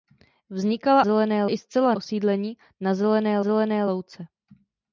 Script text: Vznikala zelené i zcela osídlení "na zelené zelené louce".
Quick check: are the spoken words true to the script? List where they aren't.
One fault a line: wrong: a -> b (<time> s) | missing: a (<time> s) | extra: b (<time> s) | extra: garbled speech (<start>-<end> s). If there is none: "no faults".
no faults